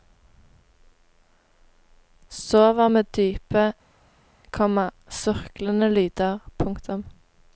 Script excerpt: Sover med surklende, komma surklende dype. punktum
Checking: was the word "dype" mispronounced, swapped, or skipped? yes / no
yes